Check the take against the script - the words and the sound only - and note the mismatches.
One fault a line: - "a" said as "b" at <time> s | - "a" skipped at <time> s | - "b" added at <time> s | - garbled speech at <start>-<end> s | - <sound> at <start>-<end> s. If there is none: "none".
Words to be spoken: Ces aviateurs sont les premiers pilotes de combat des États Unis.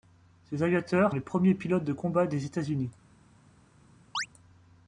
- "sont" skipped at 1.1 s
- chirp at 4.1-4.3 s